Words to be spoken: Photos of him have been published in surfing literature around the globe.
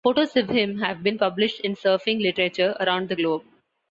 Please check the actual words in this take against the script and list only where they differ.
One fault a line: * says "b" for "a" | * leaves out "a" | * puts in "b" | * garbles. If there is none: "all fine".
all fine